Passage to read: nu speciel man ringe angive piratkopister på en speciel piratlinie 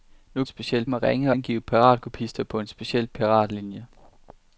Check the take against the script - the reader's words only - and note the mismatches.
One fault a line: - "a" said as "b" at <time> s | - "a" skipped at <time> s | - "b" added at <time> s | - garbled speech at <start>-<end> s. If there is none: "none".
none